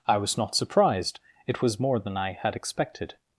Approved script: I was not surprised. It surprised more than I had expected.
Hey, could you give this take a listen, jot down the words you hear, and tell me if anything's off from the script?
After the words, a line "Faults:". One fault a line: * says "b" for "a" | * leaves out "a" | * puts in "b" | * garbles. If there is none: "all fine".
I was not surprised. It was more than I had expected.
Faults:
* says "was" for "surprised"